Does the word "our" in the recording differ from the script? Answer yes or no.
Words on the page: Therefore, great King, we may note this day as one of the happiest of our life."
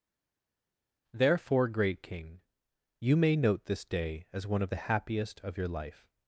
yes